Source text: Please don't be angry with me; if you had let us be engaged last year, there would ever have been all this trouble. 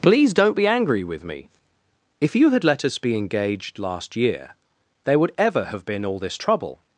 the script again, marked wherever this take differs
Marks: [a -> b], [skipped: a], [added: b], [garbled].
Please don't be angry with me; if you had let us be engaged last year, there would ever have been all this trouble.